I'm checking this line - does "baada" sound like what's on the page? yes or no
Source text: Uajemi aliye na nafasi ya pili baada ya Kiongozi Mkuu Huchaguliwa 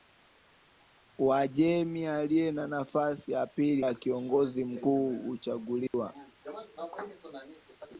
no